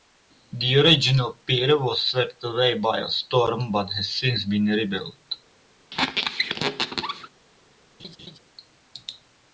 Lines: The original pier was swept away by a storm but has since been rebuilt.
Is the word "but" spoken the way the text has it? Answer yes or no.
yes